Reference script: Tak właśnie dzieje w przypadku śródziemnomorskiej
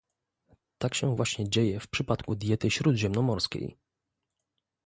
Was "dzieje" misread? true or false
false